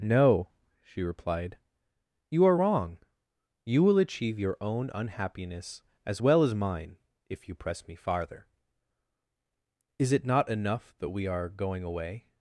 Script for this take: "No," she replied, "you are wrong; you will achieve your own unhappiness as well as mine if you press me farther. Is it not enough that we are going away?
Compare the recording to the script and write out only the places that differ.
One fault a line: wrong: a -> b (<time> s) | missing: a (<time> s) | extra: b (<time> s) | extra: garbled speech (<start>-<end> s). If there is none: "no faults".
no faults